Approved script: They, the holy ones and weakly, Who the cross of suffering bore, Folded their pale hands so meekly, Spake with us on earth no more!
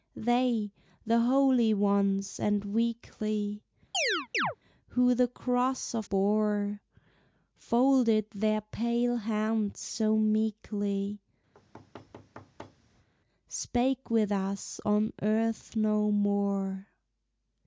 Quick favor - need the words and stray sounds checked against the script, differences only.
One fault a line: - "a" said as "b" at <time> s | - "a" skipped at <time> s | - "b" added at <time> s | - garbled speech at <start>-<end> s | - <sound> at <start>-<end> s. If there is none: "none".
- chirp at 3.9-4.6 s
- "suffering" skipped at 6.0 s
- thud at 11.5-13.1 s